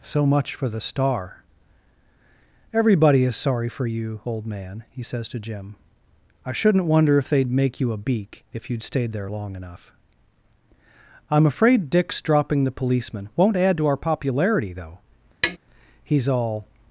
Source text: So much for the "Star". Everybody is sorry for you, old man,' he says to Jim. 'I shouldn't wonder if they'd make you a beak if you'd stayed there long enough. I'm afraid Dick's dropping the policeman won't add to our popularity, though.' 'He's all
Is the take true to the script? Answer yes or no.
yes